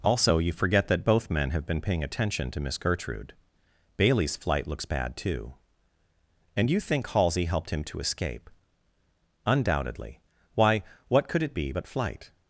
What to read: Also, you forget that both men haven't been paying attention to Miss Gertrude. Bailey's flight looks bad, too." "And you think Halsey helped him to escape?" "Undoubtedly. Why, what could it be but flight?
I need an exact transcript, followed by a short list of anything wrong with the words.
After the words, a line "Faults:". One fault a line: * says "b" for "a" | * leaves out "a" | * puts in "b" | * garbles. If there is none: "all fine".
Also, you forget that both men have been paying attention to Miss Gertrude. Bailey's flight looks bad, too." "And you think Halsey helped him to escape?" "Undoubtedly. Why, what could it be but flight?
Faults:
* says "have" for "haven't"